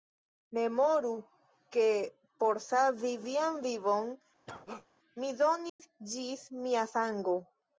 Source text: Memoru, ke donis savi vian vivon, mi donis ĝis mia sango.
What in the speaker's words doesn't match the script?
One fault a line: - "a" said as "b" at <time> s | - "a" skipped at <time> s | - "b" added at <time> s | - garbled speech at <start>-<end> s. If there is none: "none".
- "donis" said as "por" at 2.5 s